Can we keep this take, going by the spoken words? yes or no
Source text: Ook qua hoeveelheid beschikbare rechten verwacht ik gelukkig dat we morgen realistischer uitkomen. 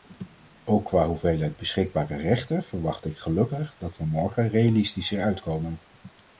yes